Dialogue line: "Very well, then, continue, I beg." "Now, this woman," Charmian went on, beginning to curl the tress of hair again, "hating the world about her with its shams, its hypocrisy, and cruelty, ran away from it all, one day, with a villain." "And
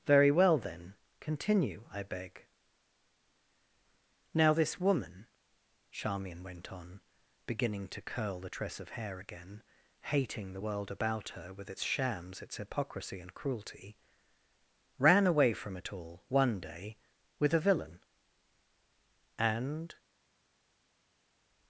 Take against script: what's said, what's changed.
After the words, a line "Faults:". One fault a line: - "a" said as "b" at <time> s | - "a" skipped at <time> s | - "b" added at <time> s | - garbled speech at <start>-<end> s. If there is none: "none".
"Very well, then, continue, I beg." "Now, this woman," Charmian went on, beginning to curl the tress of hair again, "hating the world about her with its shams, its hypocrisy, and cruelty, ran away from it all, one day, with a villain." "And
Faults:
none